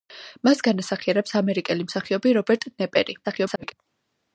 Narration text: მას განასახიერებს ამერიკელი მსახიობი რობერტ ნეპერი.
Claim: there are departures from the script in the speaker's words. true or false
true